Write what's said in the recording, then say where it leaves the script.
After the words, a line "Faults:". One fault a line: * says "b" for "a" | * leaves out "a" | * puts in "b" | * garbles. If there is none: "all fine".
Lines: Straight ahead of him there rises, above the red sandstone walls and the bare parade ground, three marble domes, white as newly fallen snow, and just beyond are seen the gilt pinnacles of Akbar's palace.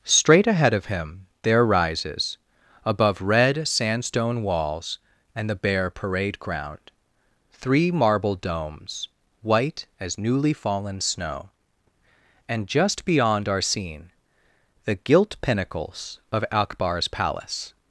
Straight ahead of him there rises, above red sandstone walls and the bare parade ground, three marble domes, white as newly fallen snow, and just beyond are seen the gilt pinnacles of Akbar's palace.
Faults:
* leaves out "the"